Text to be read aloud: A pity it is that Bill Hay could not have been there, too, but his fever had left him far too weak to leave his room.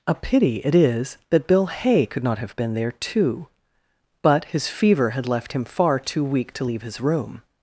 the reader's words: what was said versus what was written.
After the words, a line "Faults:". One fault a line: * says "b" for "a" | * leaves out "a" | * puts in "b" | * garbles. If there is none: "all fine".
A pity it is that Bill Hay could not have been there, too, but his fever had left him far too weak to leave his room.
Faults:
all fine